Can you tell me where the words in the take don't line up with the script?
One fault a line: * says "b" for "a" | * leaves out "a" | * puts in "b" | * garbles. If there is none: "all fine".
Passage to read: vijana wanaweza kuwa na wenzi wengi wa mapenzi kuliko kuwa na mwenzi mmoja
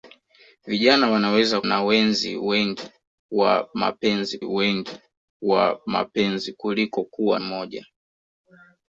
* leaves out "kuwa"
* puts in "wengi wa mapenzi"
* leaves out "na mwenzi"